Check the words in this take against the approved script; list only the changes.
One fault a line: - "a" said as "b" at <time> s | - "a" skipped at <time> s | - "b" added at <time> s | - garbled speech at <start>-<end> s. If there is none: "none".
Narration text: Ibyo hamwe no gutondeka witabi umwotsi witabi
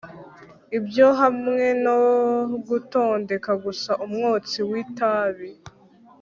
- "witabi" said as "gusa" at 3.6 s